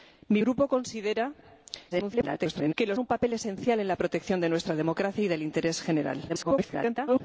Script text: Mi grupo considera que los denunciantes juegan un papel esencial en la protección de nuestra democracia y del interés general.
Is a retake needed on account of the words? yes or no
yes